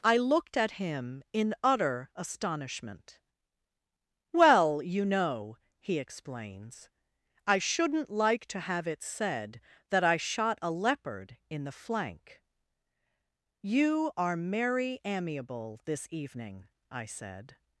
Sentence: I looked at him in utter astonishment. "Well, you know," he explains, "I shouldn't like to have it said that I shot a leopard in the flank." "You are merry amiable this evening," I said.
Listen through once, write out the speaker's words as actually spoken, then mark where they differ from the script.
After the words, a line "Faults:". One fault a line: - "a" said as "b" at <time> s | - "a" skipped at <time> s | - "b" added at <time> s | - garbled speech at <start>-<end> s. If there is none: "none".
I looked at him in utter astonishment. "Well, you know," he explains, "I shouldn't like to have it said that I shot a leopard in the flank." "You are merry amiable this evening," I said.
Faults:
none